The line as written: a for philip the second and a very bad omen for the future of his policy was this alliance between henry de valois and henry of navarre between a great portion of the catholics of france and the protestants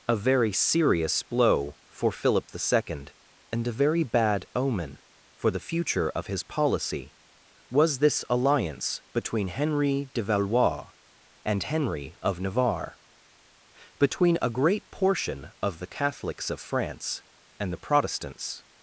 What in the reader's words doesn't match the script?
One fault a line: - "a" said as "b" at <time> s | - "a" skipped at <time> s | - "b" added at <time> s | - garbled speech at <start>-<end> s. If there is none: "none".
- "very serious blow" added at 0.1 s